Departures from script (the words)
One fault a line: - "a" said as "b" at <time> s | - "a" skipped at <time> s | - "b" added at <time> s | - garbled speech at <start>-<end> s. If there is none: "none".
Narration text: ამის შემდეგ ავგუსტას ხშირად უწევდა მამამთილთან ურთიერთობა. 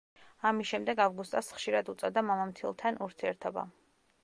none